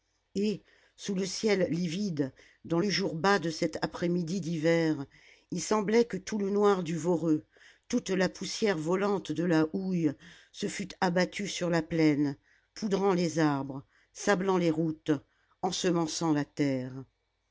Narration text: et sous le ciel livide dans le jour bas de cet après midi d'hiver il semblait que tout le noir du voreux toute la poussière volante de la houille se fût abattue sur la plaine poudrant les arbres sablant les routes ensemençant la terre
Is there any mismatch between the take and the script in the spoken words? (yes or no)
no